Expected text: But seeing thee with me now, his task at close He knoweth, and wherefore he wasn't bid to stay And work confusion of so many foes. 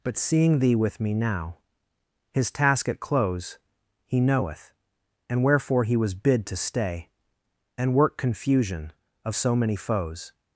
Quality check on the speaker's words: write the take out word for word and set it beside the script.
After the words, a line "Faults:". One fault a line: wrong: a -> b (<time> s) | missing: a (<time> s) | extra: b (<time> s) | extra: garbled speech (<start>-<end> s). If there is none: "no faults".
But seeing thee with me now, his task at close He knoweth, and wherefore he was bid to stay And work confusion of so many foes.
Faults:
wrong: wasn't -> was (6.0 s)